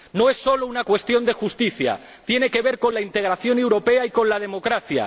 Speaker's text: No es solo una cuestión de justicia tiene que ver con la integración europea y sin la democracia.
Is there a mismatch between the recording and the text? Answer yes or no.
yes